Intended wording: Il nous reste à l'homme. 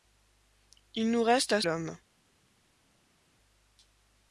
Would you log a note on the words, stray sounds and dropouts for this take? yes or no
no